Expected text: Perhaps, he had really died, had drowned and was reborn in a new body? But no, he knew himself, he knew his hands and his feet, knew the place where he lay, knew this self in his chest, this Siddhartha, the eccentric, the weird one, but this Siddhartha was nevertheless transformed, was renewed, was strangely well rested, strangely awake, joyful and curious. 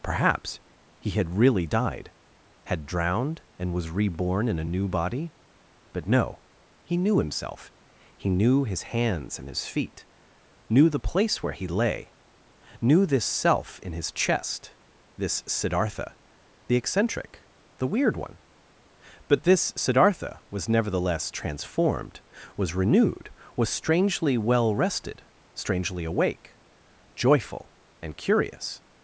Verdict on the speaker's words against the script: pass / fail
pass